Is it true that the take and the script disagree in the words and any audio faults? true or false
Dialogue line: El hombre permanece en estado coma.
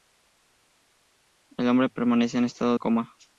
false